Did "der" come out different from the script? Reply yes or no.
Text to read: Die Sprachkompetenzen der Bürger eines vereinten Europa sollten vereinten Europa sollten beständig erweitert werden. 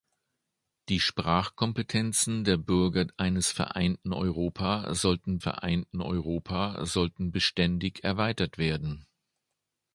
no